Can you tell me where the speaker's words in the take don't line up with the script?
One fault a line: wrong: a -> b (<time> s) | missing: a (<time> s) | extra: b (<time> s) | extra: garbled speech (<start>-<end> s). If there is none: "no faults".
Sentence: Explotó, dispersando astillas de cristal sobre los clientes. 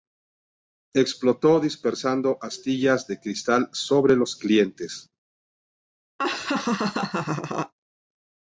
no faults